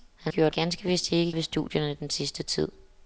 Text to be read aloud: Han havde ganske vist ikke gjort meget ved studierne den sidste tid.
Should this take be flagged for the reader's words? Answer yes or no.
yes